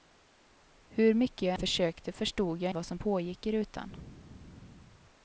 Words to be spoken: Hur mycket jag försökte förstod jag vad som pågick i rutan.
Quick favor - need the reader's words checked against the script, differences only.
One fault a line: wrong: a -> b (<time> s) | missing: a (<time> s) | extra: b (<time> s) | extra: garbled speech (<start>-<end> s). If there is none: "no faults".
no faults